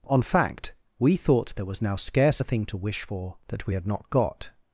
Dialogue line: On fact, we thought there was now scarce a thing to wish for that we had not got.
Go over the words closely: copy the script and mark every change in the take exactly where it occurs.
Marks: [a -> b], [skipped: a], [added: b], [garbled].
On fact, we thought there was now scarce a thing to wish for that we had not got.